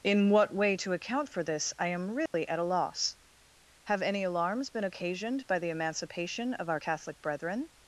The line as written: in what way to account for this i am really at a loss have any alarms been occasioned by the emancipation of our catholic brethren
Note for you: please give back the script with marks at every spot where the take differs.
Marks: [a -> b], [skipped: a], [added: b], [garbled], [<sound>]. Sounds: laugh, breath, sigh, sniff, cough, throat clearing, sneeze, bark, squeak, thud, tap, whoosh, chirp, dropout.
in what way to account for this i am really [dropout] at a loss have any alarms been occasioned by the emancipation of our catholic brethren